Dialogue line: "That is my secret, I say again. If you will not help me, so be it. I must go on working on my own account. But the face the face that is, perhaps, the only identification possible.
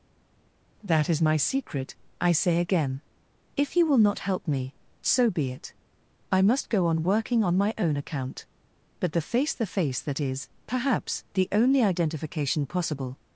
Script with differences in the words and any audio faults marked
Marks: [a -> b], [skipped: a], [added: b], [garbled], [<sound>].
"That is my secret, I say again. If you will not help me, so be it. I must go on working on my own account. But the face the face that is, perhaps, the only identification possible.